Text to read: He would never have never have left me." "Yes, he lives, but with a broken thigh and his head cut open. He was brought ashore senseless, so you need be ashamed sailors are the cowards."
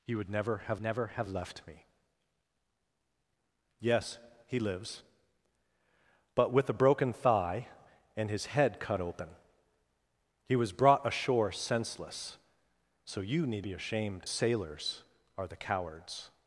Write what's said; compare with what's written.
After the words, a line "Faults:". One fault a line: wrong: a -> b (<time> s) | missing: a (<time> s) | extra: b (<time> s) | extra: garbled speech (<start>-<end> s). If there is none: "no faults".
He would never have never have left me." "Yes, he lives, but with a broken thigh and his head cut open. He was brought ashore senseless, so you need be ashamed sailors are the cowards."
Faults:
no faults